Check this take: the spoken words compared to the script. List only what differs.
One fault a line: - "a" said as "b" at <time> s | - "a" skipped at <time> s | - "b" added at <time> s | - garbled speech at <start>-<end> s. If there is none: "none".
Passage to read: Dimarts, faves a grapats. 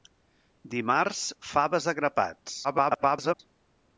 - garbled speech at 2.6-3.4 s